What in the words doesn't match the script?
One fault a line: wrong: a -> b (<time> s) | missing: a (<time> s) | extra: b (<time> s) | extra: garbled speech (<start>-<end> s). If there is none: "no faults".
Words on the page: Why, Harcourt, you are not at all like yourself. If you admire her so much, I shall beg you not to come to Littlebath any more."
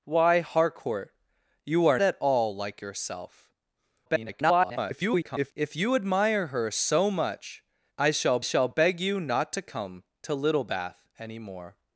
missing: not (2.0 s)
extra: garbled speech (4.1-5.5 s)
extra: shall (8.4 s)